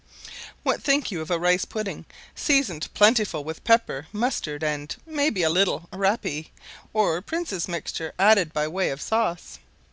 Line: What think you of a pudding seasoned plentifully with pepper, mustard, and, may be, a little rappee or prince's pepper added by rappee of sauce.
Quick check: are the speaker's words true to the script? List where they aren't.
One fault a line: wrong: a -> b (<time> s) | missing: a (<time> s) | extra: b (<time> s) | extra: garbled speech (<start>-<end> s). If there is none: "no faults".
extra: rice (1.4 s)
wrong: pepper -> mixture (7.7 s)
wrong: rappee -> way (8.7 s)